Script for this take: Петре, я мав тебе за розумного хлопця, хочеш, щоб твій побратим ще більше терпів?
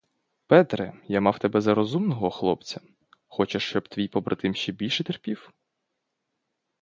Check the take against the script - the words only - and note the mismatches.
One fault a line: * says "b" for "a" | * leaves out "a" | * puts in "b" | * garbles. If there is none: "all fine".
all fine